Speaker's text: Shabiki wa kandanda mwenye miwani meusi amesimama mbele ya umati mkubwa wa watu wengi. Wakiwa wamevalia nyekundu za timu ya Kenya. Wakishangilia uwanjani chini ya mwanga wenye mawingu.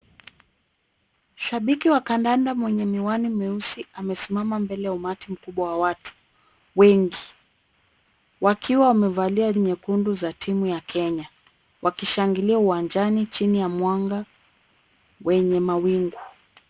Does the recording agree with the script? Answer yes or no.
yes